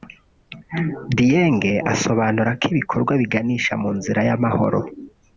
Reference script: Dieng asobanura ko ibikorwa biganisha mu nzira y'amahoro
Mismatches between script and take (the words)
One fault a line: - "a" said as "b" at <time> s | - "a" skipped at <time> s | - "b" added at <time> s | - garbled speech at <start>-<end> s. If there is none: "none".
none